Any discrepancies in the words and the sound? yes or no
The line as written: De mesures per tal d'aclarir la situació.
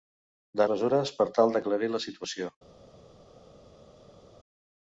no